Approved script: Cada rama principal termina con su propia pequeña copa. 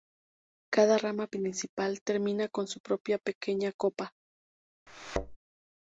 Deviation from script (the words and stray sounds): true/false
true